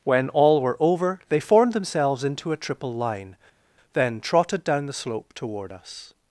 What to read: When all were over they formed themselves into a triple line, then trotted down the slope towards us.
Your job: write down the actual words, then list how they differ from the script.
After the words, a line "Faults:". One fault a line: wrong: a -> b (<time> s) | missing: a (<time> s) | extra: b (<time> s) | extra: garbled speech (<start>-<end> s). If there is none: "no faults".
When all were over they formed themselves into a triple line, then trotted down the slope toward us.
Faults:
wrong: towards -> toward (5.3 s)